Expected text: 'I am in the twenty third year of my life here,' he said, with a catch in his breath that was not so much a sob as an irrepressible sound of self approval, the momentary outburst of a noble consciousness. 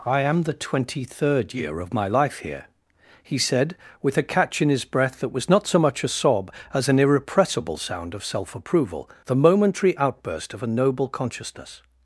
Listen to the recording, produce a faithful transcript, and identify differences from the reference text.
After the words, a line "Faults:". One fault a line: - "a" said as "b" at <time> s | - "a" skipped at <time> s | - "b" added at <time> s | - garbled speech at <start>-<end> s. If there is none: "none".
'I am the twenty third year of my life here,' he said, with a catch in his breath that was not so much a sob as an irrepressible sound of self approval, the momentary outburst of a noble consciousness.
Faults:
- "in" skipped at 0.4 s